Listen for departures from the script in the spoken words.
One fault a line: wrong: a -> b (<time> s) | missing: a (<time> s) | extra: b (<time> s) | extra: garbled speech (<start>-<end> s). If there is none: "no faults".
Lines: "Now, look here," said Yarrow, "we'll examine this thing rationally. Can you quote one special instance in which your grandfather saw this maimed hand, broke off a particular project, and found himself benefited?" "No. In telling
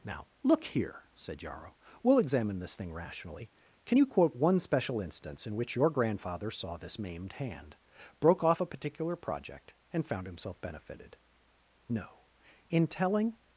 no faults